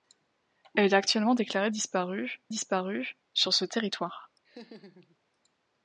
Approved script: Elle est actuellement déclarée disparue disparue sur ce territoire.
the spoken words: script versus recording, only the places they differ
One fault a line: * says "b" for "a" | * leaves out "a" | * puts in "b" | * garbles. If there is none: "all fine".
all fine